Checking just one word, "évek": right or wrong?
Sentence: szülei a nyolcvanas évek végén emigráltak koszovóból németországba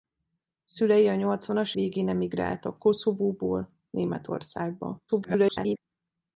wrong